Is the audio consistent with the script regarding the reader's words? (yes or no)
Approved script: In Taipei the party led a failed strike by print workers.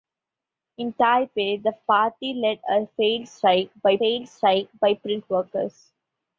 no